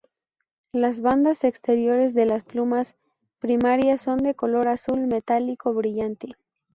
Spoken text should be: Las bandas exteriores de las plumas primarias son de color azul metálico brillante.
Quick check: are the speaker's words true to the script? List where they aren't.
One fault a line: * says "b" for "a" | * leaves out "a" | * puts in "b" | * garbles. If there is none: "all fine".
all fine